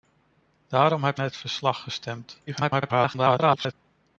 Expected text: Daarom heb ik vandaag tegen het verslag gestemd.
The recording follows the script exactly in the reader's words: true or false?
false